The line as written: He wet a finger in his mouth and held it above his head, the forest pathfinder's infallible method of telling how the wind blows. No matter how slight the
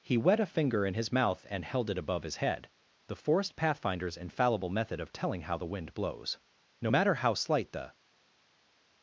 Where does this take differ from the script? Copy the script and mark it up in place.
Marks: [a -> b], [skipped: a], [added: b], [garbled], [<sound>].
He wet a finger in his mouth and held it above his head, the forest pathfinder's infallible method of telling how the wind blows. No matter how slight the